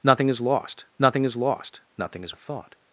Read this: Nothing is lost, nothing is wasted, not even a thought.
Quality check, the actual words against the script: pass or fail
fail